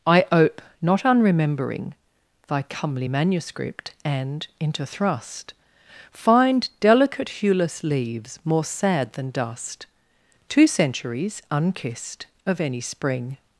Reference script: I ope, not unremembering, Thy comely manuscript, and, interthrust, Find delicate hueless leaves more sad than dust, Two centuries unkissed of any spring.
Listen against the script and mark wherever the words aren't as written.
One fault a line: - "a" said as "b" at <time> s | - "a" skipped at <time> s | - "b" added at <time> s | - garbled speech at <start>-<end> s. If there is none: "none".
none